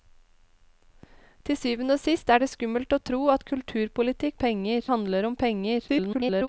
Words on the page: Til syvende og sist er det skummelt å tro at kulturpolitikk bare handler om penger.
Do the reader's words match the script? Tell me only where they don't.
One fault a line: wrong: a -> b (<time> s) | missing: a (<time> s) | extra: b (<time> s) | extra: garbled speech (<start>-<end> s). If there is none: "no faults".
wrong: bare -> penger (4.4 s)
extra: garbled speech (5.9-6.5 s)